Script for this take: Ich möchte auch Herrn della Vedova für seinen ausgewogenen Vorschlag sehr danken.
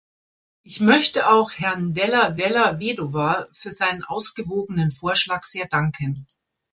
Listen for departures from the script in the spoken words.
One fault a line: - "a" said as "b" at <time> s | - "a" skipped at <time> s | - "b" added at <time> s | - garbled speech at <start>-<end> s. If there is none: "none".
- "della" added at 2.3 s